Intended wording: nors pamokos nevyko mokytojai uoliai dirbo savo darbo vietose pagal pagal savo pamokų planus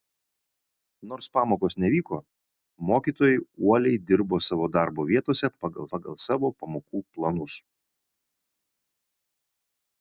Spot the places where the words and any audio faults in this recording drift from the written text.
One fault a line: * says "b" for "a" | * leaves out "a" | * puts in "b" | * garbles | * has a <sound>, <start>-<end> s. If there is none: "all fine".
all fine